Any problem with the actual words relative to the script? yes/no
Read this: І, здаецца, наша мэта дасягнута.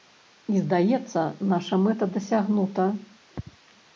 no